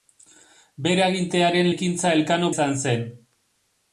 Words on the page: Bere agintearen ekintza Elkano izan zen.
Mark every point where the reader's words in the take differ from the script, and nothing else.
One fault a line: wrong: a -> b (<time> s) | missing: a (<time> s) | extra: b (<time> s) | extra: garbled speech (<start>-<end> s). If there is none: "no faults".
no faults